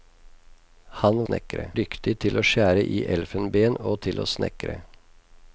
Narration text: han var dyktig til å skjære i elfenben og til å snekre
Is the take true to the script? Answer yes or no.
no